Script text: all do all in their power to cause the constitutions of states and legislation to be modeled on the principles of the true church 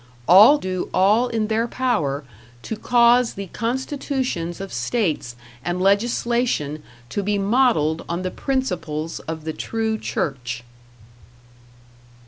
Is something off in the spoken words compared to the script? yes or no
no